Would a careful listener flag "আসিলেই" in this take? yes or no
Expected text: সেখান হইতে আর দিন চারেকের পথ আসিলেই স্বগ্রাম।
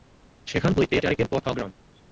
yes